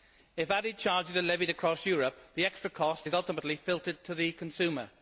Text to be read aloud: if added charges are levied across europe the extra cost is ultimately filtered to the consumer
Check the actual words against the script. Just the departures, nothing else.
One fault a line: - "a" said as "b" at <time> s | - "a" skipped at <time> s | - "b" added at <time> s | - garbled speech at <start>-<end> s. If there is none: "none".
none